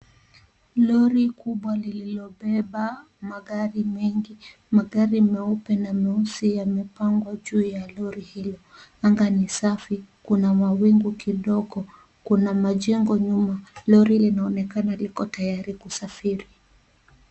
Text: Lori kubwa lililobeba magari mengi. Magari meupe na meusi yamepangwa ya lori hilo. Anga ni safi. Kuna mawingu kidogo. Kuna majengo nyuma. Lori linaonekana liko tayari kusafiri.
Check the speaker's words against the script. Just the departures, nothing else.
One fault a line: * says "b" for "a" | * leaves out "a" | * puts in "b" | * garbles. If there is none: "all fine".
* puts in "juu"